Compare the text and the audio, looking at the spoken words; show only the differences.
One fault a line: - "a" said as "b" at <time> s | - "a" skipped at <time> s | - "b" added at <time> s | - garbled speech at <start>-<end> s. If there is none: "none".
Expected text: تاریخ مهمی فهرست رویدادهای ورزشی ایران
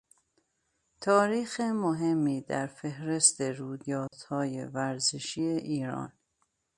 - "در" added at 2.4 s